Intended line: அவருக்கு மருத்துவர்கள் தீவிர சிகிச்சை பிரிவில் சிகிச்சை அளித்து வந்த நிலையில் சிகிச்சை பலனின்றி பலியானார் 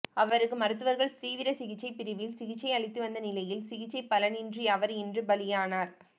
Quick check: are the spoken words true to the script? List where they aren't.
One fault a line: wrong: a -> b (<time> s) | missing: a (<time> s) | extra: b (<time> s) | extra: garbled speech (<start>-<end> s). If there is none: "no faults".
extra: அவர் இன்று (4.7 s)